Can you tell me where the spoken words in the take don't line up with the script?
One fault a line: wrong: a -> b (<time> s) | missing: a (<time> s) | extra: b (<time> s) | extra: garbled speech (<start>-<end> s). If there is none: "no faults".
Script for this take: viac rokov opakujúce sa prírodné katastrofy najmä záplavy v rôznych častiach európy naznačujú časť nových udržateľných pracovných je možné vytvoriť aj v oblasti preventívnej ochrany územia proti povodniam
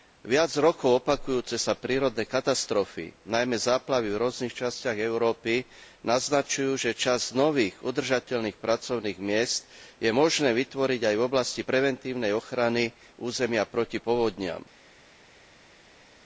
extra: že (6.8 s)
extra: miest (9.2 s)